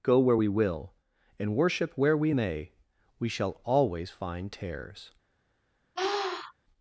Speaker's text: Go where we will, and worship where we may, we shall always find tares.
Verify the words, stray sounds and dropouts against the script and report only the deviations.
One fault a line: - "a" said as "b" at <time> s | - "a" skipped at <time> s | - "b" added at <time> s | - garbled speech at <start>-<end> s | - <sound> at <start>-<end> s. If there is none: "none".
- sniff at 6.0-6.5 s